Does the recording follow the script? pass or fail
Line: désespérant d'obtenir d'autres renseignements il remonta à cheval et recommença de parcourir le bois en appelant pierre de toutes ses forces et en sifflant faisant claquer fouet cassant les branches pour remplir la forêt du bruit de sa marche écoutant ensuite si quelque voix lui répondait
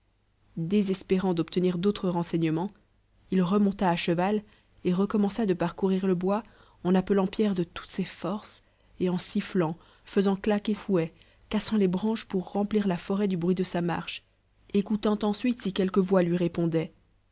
pass